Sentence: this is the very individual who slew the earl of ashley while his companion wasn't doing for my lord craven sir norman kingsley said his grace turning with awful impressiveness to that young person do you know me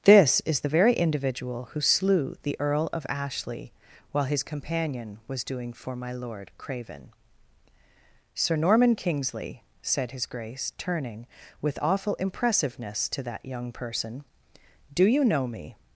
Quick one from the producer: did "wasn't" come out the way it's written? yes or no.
no